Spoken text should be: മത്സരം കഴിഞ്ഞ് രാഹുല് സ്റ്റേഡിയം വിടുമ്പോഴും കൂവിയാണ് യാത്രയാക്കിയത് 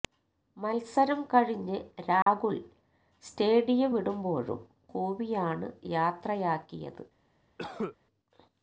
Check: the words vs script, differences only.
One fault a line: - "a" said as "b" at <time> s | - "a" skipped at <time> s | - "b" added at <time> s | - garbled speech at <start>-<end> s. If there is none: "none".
none